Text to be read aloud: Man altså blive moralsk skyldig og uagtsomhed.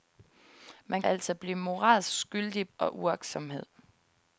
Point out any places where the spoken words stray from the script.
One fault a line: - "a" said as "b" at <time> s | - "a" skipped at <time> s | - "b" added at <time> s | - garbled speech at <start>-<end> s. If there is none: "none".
none